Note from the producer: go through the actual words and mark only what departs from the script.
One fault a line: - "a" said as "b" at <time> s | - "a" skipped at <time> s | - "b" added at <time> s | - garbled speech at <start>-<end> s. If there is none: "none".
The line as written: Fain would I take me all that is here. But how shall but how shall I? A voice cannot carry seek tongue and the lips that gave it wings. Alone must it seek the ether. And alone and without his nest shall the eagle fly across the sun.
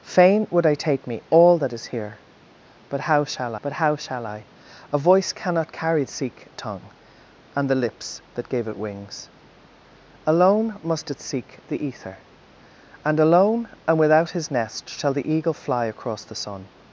none